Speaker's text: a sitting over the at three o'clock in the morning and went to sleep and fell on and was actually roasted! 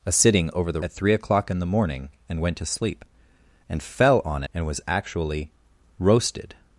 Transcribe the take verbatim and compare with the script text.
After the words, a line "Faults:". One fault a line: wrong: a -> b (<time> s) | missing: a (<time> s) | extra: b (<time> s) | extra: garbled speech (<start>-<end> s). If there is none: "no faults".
a sitting over the at three o'clock in the morning and went to sleep and fell on and was actually roasted!
Faults:
no faults